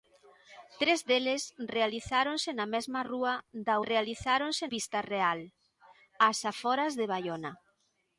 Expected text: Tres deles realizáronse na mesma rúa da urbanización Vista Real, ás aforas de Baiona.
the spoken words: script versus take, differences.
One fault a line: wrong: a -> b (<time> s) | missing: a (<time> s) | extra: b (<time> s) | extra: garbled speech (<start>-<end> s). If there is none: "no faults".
wrong: urbanización -> realizáronse (3.9 s)